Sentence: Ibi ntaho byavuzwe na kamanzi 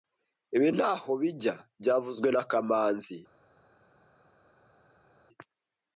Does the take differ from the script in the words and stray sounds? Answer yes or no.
yes